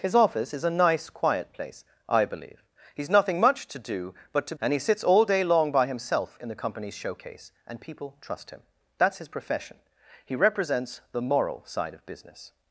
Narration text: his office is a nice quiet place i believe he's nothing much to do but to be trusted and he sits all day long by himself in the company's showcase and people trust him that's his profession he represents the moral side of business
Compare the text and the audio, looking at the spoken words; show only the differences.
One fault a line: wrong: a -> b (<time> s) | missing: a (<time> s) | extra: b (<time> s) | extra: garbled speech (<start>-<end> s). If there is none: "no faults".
missing: be trusted (4.5 s)